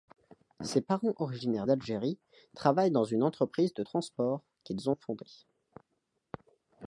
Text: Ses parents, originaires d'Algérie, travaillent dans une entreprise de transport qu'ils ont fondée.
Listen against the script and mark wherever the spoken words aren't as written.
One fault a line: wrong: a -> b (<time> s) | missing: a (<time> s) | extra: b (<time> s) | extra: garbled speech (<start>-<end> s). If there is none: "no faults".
no faults